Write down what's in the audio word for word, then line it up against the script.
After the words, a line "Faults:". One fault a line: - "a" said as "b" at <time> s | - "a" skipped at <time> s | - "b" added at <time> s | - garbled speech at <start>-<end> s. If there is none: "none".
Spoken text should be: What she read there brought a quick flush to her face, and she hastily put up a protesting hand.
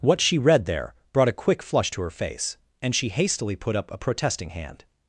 What she read there brought a quick flush to her face, and she hastily put up a protesting hand.
Faults:
none